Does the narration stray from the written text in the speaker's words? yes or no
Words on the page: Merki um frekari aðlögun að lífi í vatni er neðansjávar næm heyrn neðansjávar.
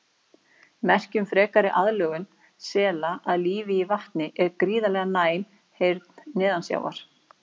yes